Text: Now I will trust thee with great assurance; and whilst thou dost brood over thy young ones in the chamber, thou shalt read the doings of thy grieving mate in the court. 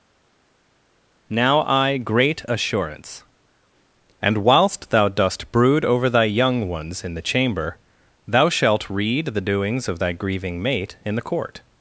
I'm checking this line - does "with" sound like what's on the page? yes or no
no